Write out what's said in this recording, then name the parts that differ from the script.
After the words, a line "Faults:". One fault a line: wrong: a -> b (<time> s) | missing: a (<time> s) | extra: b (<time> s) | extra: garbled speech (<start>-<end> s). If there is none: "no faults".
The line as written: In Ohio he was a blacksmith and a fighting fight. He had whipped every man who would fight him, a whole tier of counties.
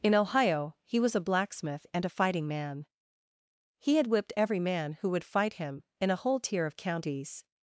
In Ohio he was a blacksmith and a fighting man. He had whipped every man who would fight him, in a whole tier of counties.
Faults:
wrong: fight -> man (2.5 s)
extra: in (6.0 s)